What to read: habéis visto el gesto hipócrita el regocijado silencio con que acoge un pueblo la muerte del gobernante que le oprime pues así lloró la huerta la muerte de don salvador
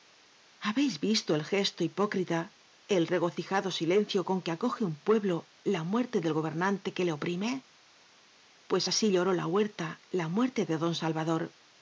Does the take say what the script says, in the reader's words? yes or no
yes